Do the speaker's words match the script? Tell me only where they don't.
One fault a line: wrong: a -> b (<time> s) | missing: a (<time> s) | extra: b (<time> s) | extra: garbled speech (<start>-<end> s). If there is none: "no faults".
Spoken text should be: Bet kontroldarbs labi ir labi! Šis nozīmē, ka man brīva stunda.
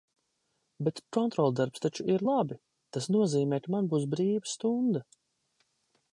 wrong: labi -> taču (1.9 s)
wrong: Šis -> Tas (3.0 s)
extra: būs (3.9 s)